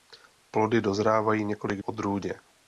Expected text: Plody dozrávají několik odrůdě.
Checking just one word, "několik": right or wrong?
right